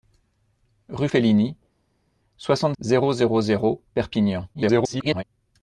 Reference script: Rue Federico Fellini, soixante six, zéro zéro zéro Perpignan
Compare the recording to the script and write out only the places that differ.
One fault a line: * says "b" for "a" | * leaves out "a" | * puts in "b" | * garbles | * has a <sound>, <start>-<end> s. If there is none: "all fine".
* leaves out "Federico"
* leaves out "six"
* garbles